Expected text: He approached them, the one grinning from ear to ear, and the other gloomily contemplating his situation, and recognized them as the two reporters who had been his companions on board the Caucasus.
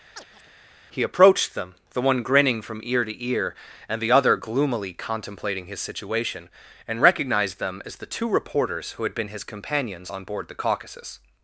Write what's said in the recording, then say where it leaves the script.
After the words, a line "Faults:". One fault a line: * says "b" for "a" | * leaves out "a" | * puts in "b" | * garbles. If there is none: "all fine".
He approached them, the one grinning from ear to ear, and the other gloomily contemplating his situation, and recognized them as the two reporters who had been his companions on board the Caucasus.
Faults:
all fine